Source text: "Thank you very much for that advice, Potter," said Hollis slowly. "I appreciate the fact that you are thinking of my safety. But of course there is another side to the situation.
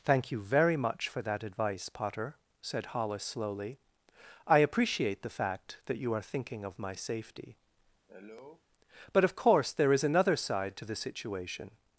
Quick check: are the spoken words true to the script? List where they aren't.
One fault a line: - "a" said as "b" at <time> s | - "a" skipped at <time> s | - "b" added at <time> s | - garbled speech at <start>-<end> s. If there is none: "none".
none